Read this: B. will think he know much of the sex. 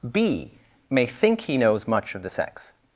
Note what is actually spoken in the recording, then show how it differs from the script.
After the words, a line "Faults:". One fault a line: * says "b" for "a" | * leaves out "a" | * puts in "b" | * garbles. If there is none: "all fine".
B. may think he knows much of the sex.
Faults:
* says "may" for "will"
* says "knows" for "know"